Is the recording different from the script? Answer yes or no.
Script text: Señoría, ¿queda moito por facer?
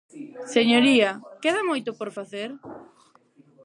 no